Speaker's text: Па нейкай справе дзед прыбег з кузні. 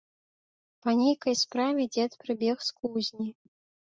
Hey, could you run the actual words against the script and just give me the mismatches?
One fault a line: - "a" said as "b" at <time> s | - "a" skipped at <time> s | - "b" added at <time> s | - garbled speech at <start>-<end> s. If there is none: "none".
none